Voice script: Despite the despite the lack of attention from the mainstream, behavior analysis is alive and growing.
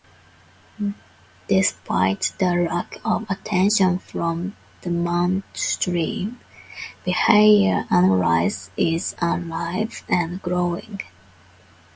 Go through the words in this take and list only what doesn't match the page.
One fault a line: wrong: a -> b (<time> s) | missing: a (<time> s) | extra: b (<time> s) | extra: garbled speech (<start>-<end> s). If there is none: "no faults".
missing: despite the (2.5 s)